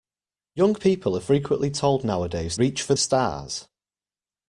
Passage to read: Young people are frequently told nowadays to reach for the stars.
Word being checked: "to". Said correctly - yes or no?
no